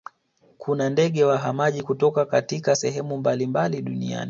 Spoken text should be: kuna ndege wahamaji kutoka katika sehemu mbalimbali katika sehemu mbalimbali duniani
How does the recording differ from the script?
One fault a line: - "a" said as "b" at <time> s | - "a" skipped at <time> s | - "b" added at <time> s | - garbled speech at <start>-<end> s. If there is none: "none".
- "katika sehemu mbalimbali" skipped at 3.8 s